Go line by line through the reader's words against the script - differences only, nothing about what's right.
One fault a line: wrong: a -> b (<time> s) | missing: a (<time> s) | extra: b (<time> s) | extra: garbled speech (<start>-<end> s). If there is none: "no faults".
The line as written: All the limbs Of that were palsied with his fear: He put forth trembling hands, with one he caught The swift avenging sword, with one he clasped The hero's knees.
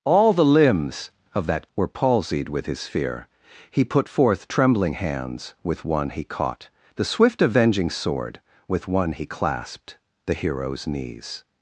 no faults